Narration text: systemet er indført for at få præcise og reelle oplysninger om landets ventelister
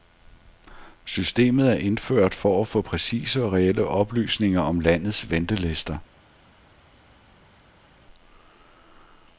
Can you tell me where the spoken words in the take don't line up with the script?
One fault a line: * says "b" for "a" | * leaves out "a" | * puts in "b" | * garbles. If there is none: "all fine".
all fine